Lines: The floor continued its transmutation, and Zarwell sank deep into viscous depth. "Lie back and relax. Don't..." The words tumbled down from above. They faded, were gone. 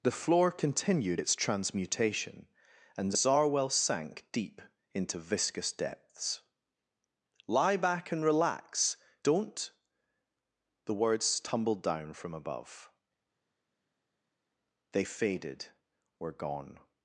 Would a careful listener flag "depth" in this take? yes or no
yes